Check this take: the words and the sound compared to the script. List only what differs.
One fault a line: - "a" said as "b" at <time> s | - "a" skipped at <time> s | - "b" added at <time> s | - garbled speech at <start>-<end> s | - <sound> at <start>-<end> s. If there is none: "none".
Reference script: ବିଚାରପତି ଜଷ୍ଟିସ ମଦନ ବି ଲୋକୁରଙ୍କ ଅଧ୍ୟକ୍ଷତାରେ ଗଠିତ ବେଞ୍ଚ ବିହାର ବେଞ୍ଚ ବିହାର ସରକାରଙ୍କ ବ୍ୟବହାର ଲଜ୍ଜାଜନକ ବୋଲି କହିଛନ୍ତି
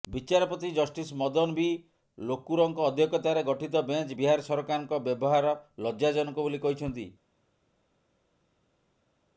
- "ବେଞ୍ଚ ବିହାର" skipped at 4.5 s